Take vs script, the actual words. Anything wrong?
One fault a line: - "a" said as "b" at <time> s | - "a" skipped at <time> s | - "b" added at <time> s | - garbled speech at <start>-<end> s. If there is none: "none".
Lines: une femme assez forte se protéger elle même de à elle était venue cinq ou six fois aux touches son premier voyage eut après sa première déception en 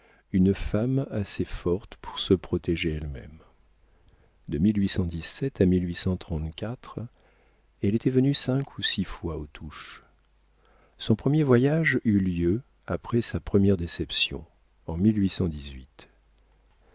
- "pour" added at 2.0 s
- "lieu" added at 12.2 s